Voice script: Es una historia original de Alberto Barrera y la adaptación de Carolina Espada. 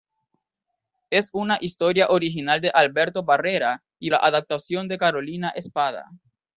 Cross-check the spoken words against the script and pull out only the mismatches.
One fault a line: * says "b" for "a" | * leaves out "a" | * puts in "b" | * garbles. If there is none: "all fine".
all fine